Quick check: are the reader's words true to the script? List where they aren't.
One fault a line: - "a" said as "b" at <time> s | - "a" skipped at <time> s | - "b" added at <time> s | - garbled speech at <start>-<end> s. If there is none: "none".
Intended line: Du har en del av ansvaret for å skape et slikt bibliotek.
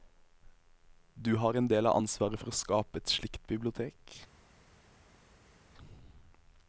none